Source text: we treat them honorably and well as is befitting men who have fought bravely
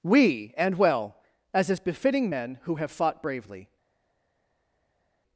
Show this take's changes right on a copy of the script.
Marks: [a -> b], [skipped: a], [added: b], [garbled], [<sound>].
we [skipped: treat them honorably] and well as is befitting men who have fought bravely